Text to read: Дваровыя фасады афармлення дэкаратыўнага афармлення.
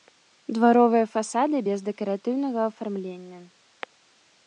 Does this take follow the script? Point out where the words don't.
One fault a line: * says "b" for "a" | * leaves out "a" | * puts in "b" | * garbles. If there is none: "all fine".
* says "без" for "афармлення"